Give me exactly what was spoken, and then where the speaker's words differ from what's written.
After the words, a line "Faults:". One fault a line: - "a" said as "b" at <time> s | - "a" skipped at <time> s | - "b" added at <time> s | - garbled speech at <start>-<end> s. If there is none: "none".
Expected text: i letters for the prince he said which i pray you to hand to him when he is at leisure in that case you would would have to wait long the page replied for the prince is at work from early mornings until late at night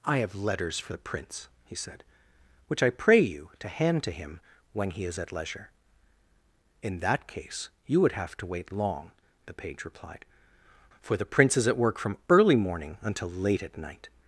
i have letters for the prince he said which i pray you to hand to him when he is at leisure in that case you would have to wait long the page replied for the prince is at work from early morning until late at night
Faults:
- "have" added at 0.2 s
- "would" skipped at 8.1 s
- "mornings" said as "morning" at 12.5 s